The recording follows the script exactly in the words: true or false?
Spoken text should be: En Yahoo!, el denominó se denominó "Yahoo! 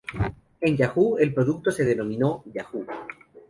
false